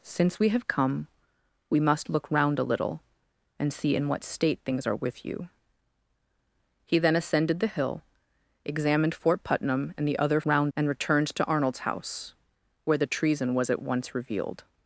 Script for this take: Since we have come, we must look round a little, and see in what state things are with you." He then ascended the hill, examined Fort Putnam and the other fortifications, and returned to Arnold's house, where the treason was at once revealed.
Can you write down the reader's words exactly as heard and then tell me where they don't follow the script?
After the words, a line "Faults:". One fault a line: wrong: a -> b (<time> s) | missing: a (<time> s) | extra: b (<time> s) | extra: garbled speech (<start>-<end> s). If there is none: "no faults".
Since we have come, we must look round a little, and see in what state things are with you." He then ascended the hill, examined Fort Putnam and the other round, and returned to Arnold's house, where the treason was at once revealed.
Faults:
wrong: fortifications -> round (10.5 s)